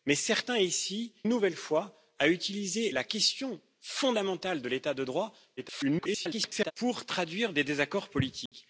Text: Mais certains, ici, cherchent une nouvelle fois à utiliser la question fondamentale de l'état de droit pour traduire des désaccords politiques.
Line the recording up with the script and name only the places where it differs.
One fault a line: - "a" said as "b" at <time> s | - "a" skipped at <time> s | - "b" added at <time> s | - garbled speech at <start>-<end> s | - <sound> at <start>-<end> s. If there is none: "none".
- "cherchent une" skipped at 1.1 s
- garbled speech at 5.6-6.7 s
- dropout at 8.5-8.5 s